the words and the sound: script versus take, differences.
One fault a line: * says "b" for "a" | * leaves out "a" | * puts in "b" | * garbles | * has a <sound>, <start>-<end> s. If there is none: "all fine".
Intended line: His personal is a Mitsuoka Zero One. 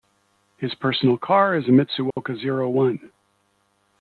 * puts in "car"
* has a dropout, 2.1-2.2 s